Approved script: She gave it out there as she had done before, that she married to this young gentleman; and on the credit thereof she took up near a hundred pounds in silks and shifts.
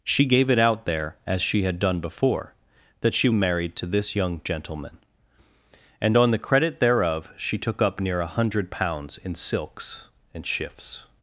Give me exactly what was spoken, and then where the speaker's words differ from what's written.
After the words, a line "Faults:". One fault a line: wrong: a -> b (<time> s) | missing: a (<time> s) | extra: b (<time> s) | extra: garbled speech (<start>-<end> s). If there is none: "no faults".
She gave it out there as she had done before, that she married to this young gentleman; and on the credit thereof she took up near a hundred pounds in silks and shifts.
Faults:
no faults